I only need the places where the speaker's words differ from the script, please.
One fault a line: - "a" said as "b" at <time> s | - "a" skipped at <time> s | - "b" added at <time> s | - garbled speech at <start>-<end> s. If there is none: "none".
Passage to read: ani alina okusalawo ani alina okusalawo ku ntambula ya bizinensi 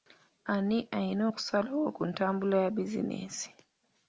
- "ani alina okusalawo" skipped at 1.9 s